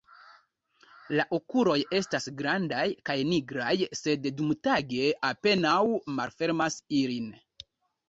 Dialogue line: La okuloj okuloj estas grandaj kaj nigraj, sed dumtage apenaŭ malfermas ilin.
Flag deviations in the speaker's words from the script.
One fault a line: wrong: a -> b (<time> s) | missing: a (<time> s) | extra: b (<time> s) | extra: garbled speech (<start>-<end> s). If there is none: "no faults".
missing: okuloj (1.8 s)